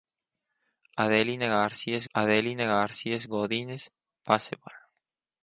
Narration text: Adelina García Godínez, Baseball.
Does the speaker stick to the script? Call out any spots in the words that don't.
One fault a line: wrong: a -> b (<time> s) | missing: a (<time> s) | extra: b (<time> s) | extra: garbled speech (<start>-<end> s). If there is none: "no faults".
extra: adelina García (2.1 s)